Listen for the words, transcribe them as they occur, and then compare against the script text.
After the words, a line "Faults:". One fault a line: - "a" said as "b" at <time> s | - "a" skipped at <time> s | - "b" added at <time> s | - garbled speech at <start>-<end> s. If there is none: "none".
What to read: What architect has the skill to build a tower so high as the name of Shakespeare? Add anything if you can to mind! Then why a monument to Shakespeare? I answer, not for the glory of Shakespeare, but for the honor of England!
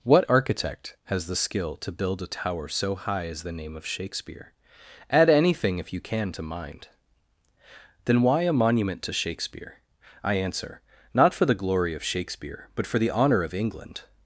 What architect has the skill to build a tower so high as the name of Shakespeare? Add anything if you can to mind! Then why a monument to Shakespeare? I answer, not for the glory of Shakespeare, but for the honor of England!
Faults:
none